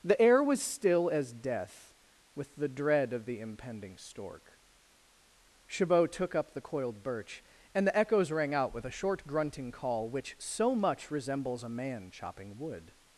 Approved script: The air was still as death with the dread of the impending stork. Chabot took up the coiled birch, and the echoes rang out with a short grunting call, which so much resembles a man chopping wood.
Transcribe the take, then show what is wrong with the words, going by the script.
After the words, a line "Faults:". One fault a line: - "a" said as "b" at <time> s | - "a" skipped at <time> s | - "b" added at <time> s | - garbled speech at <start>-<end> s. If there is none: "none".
The air was still as death with the dread of the impending stork. Chabot took up the coiled birch, and the echoes rang out with a short grunting call, which so much resembles a man chopping wood.
Faults:
none